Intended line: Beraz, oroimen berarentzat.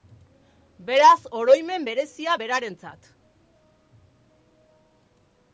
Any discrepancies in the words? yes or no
yes